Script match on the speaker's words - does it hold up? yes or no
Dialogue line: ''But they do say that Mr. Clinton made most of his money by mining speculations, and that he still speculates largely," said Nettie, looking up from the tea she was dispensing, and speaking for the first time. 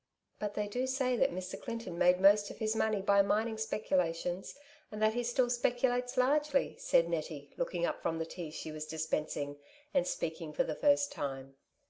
yes